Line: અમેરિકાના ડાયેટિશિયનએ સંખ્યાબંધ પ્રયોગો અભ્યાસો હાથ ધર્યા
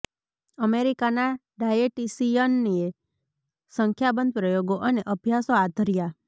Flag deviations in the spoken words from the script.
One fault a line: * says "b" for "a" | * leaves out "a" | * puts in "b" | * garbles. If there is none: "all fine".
* puts in "અને"